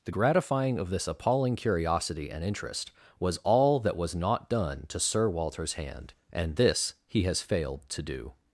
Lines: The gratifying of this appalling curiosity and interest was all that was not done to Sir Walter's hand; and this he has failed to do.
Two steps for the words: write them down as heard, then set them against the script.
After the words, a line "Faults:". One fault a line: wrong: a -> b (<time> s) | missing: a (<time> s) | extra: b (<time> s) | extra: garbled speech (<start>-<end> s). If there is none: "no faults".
The gratifying of this appalling curiosity and interest was all that was not done to Sir Walter's hand; and this he has failed to do.
Faults:
no faults